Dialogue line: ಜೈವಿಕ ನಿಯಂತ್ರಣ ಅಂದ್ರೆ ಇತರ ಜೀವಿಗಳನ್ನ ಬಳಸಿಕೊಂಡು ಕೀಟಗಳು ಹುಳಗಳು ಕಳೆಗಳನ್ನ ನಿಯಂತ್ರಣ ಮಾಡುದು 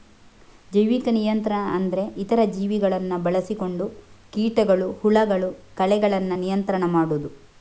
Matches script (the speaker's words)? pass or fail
pass